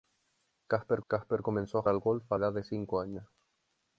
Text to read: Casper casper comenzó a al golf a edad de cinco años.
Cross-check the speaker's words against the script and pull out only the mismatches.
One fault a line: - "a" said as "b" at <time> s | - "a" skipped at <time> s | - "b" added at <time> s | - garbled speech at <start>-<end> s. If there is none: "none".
none